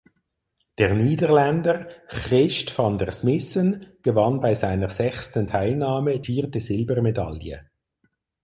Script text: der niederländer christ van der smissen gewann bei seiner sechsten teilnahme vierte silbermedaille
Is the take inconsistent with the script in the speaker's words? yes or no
no